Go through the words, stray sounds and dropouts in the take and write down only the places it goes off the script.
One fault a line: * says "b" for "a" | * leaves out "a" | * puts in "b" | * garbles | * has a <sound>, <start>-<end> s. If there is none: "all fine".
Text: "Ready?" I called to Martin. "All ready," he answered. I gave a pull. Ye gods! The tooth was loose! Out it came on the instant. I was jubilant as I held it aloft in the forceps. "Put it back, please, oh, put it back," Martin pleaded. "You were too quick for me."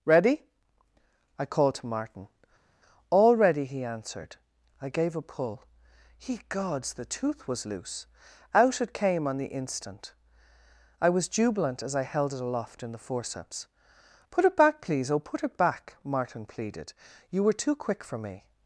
all fine